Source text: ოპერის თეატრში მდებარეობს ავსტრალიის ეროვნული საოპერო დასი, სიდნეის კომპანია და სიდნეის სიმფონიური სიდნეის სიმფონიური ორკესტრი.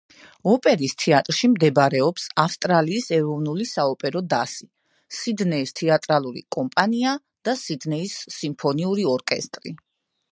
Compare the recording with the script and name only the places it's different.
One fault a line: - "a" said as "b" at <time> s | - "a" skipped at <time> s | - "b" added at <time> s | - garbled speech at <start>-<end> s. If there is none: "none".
- "თეატრალური" added at 5.8 s
- "სიდნეის სიმფონიური" skipped at 9.1 s